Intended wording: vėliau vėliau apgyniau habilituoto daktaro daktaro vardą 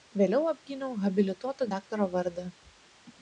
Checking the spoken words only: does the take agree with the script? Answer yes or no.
no